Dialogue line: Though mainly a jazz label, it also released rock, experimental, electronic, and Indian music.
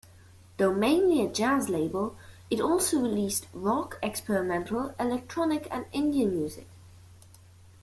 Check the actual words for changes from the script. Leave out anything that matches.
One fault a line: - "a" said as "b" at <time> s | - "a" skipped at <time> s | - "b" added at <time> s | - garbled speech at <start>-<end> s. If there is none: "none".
none